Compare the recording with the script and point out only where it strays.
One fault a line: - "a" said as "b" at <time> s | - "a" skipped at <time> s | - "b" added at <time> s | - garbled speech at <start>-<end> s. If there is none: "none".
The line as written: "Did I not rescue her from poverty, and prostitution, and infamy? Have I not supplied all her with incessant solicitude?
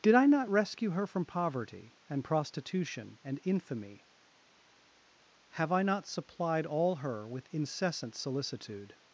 none